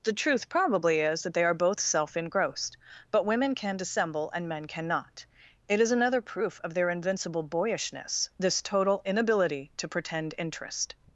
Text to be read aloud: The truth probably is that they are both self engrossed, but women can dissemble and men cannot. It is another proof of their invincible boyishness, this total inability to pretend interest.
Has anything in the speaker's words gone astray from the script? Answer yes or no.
no